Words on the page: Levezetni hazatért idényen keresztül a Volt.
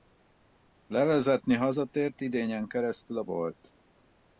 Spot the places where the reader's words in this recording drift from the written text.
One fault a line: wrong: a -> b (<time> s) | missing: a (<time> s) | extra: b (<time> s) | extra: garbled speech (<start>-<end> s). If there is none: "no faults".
no faults